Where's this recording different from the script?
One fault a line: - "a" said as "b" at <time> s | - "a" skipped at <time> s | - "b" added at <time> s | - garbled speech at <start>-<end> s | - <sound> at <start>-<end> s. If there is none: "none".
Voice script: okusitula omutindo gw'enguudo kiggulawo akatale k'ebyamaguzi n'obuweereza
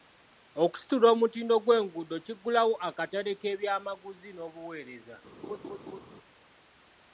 - laugh at 5.4-6.0 s